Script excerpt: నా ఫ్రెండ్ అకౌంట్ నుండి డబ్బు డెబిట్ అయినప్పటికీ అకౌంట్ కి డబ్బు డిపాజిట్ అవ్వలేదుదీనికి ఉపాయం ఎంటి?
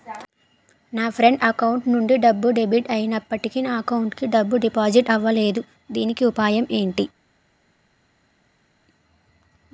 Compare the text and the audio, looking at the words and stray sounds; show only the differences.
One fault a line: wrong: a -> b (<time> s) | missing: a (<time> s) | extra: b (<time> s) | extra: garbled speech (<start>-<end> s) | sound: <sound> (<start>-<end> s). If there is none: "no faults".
extra: నా (3.6 s)